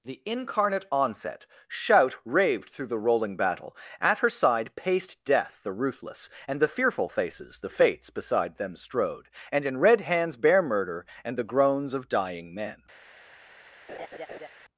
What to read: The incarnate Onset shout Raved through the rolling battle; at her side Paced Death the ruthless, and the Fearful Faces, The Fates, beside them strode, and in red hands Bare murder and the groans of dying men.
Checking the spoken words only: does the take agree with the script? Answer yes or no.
yes